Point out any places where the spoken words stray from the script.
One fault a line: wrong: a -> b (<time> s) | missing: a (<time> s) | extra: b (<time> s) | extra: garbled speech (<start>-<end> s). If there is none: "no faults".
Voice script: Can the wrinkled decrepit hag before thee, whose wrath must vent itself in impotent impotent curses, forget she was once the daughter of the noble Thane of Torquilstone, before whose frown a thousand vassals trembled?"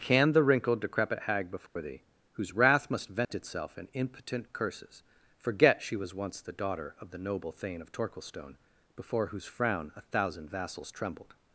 missing: impotent (4.5 s)